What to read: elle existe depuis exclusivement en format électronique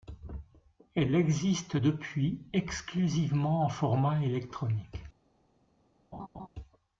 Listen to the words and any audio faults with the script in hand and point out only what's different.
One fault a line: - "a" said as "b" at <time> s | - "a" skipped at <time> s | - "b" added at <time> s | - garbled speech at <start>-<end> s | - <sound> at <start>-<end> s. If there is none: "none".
- laugh at 6.1-6.5 s